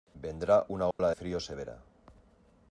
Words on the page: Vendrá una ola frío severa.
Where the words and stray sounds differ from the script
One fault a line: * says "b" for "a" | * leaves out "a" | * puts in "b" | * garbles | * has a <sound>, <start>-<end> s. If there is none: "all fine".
* has a dropout, 0.9-1.0 s